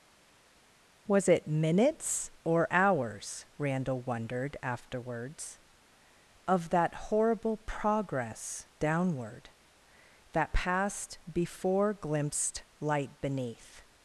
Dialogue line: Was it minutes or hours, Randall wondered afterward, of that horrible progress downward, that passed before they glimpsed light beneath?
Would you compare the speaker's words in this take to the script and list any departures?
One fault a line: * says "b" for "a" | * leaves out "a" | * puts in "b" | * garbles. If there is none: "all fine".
* says "afterwards" for "afterward"
* leaves out "they"